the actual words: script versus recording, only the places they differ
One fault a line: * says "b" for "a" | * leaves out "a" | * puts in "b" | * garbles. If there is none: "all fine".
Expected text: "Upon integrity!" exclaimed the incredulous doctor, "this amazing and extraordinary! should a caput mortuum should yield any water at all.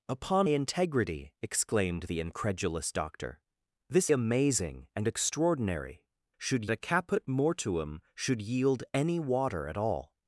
all fine